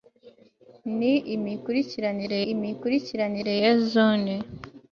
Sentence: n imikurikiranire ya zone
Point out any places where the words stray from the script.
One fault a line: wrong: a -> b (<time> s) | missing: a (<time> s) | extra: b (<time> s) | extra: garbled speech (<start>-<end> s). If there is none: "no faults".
extra: imikurikiranire (2.5 s)